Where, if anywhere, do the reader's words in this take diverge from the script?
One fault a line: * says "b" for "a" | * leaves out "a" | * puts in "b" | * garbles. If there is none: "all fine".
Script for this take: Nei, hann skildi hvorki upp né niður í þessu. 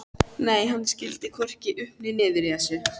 all fine